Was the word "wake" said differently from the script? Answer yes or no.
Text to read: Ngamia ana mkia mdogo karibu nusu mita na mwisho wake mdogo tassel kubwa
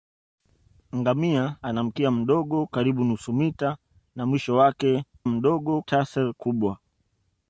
no